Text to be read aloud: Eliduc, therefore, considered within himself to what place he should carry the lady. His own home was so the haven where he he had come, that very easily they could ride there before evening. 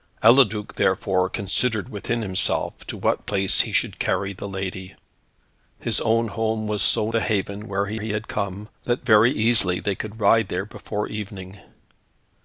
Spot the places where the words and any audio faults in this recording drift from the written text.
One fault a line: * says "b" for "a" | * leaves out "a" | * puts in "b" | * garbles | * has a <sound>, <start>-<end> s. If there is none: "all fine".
all fine